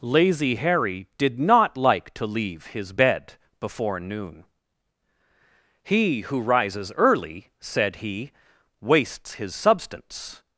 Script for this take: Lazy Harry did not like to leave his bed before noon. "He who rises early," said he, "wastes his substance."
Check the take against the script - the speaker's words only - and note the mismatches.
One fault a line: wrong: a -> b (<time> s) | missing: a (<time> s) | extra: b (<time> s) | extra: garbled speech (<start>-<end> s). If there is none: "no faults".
no faults